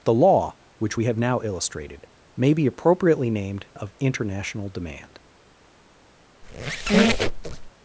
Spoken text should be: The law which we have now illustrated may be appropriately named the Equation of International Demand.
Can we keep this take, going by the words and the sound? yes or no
no